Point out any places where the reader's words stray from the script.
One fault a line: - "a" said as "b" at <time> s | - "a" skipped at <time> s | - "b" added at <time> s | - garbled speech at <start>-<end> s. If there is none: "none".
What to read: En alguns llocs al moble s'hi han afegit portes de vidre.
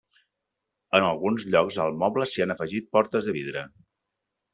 none